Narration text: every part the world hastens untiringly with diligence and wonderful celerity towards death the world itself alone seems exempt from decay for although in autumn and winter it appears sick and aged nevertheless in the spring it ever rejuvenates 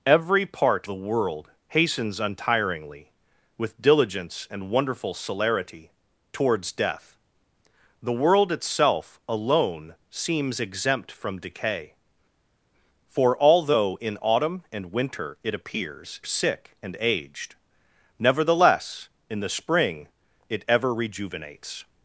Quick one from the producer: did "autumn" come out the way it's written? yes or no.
yes